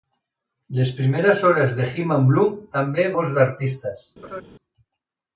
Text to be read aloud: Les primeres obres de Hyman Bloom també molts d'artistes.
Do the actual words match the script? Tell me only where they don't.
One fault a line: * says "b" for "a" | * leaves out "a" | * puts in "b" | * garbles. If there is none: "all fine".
all fine